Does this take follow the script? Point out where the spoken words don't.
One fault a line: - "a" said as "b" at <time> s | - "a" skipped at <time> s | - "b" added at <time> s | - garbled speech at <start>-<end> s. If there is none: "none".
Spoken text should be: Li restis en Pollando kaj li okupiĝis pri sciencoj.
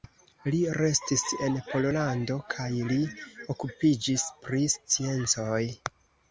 none